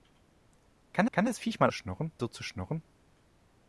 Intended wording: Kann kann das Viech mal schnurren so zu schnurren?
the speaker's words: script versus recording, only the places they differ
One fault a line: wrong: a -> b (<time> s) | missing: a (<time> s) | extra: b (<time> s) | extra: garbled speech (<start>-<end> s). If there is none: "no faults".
no faults